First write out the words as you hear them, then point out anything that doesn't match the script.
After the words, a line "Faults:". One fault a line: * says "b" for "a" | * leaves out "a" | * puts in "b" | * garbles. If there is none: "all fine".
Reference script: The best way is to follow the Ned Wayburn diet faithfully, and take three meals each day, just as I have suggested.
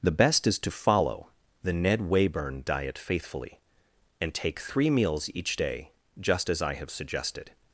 The best is to follow the Ned Wayburn diet faithfully, and take three meals each day, just as I have suggested.
Faults:
* leaves out "way"